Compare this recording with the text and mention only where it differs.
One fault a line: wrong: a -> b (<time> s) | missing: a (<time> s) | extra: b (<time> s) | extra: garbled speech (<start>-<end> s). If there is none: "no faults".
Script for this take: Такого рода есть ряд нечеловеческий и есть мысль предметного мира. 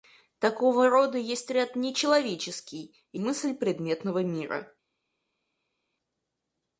missing: есть (3.2 s)